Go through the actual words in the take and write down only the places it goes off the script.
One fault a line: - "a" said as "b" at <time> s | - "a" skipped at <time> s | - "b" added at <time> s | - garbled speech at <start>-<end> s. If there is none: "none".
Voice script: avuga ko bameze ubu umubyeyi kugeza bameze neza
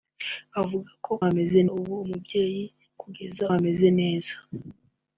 none